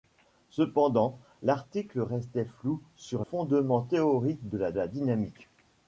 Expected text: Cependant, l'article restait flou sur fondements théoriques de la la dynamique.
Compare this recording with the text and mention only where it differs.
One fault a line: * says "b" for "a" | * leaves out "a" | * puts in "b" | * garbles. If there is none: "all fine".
all fine